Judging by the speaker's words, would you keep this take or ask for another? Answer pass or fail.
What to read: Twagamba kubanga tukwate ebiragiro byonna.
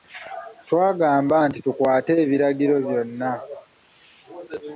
fail